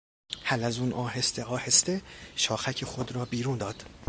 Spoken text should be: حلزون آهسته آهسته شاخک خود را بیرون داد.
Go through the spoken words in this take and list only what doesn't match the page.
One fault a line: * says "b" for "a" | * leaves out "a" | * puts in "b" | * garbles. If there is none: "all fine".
all fine